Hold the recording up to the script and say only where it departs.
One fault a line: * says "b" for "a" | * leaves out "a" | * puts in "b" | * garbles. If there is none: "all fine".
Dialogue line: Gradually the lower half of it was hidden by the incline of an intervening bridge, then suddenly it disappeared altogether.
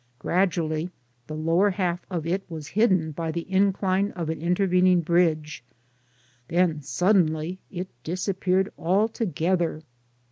all fine